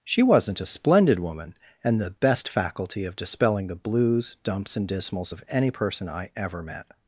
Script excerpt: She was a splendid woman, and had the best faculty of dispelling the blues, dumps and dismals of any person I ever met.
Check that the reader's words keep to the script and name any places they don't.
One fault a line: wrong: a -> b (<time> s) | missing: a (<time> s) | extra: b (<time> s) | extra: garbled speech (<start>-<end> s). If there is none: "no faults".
wrong: was -> wasn't (0.2 s)
missing: had (2.0 s)